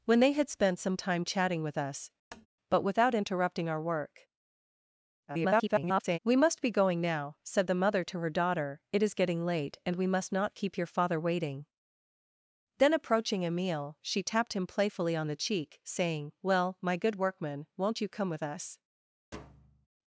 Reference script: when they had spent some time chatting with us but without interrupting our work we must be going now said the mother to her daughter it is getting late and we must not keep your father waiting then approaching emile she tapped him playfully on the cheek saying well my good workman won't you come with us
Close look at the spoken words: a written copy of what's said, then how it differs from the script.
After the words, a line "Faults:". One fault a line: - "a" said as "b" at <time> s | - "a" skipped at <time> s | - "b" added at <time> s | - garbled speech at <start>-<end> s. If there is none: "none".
when they had spent some time chatting with us but without interrupting our work [garbled] we must be going now said the mother to her daughter it is getting late and we must not keep your father waiting then approaching emile she tapped him playfully on the cheek saying well my good workman won't you come with us
Faults:
- garbled speech at 5.3-6.2 s